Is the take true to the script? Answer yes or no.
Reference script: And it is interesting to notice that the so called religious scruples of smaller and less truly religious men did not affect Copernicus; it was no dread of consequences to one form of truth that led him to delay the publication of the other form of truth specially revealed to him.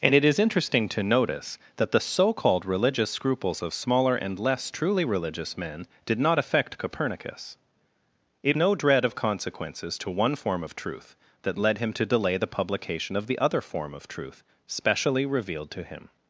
no